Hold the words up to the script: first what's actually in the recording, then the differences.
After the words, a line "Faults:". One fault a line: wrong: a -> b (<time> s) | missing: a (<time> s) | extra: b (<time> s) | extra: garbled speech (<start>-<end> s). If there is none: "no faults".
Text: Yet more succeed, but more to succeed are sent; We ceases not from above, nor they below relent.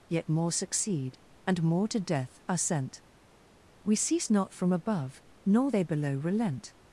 Yet more succeed, and more to death are sent; We cease not from above, nor they below relent.
Faults:
wrong: but -> and (1.5 s)
wrong: succeed -> death (2.0 s)
wrong: ceases -> cease (4.0 s)